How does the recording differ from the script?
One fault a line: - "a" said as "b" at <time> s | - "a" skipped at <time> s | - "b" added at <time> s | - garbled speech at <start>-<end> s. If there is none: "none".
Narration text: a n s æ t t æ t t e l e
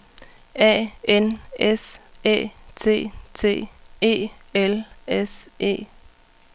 - "æ t t" skipped at 3.7 s
- "s" added at 5.1 s